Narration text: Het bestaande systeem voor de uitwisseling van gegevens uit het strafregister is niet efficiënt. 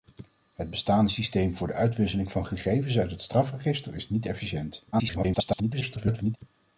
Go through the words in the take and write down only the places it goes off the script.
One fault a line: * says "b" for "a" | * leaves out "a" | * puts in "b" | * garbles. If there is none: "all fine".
* garbles